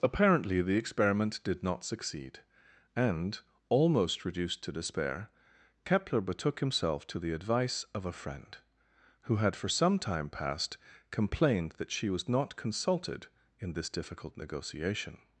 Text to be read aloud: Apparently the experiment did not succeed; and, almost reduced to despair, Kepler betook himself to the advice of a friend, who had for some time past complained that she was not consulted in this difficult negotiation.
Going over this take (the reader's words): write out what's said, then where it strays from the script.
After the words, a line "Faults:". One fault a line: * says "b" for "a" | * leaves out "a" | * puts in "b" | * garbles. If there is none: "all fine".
Apparently the experiment did not succeed; and, almost reduced to despair, Kepler betook himself to the advice of a friend, who had for some time past complained that she was not consulted in this difficult negotiation.
Faults:
all fine